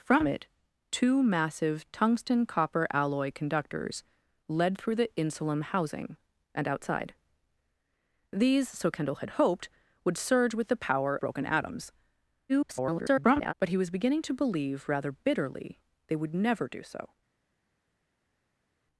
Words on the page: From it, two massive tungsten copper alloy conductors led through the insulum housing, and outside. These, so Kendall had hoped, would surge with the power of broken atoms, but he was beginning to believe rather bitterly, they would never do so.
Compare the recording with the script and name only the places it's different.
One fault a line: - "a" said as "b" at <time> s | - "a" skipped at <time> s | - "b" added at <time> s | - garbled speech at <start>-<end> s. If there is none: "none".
- "of" skipped at 11.2 s
- garbled speech at 12.5-13.5 s